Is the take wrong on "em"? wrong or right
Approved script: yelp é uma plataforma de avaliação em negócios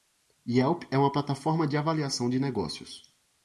wrong